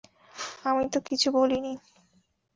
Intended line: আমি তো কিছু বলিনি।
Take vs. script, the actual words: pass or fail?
pass